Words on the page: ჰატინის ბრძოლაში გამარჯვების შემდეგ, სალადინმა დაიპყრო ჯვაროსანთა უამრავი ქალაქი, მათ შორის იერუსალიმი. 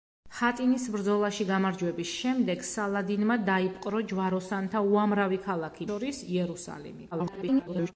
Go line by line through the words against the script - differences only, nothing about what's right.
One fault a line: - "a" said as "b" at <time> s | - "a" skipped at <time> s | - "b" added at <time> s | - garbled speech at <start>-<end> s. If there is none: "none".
- "მათ" skipped at 5.9 s
- garbled speech at 7.1-7.9 s